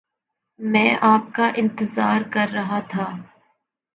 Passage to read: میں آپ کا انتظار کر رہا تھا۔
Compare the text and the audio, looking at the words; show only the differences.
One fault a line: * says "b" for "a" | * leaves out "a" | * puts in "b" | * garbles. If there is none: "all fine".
all fine